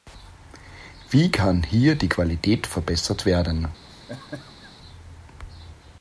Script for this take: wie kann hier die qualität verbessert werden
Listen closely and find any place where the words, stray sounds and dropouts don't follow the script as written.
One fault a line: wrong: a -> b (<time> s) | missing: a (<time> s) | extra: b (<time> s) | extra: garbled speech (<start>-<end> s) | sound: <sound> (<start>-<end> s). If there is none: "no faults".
sound: laugh (3.9-4.7 s)